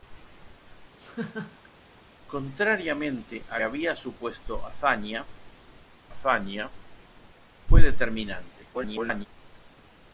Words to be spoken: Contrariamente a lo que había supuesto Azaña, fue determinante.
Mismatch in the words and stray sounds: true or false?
true